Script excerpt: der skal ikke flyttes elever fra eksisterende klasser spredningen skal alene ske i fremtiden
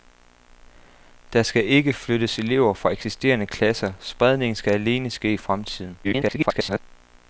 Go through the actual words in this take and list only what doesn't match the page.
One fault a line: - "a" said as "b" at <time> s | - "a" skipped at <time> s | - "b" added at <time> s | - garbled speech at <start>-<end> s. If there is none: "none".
- garbled speech at 6.0-6.8 s